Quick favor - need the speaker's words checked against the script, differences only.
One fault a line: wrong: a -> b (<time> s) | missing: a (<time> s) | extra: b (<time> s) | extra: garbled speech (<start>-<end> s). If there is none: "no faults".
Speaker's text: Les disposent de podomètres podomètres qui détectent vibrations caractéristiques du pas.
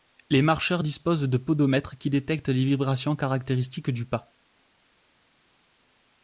extra: marcheurs (0.4 s)
missing: podomètres (2.0 s)
extra: les (2.5 s)